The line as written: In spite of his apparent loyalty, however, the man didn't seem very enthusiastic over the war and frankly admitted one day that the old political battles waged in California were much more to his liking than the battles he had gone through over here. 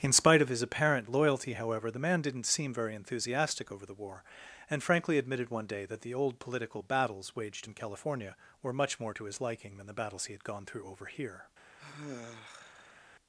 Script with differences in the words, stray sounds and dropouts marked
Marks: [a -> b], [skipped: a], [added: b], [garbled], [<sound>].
In spite of his apparent loyalty, however, the man didn't seem very enthusiastic over the war and frankly admitted one day that the old political battles waged in California were much more to his liking than the battles he had gone through over here. [sigh]